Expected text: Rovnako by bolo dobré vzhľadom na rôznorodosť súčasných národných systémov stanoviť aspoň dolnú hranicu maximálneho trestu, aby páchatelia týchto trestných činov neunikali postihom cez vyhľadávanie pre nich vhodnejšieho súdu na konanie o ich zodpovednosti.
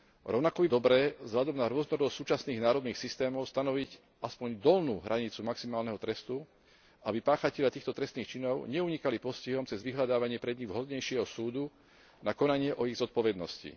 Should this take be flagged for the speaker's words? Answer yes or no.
yes